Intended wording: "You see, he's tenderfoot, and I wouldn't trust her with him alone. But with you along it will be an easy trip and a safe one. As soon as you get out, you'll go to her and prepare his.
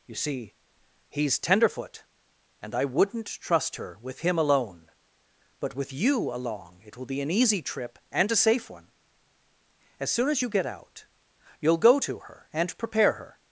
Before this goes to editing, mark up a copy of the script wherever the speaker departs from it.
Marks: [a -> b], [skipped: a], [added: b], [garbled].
"You see, he's tenderfoot, and I wouldn't trust her with him alone. But with you along it will be an easy trip and a safe one. As soon as you get out, you'll go to her and prepare [his. -> her]